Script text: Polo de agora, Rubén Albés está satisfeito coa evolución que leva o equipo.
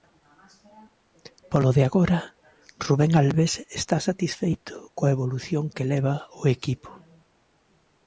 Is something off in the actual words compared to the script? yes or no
no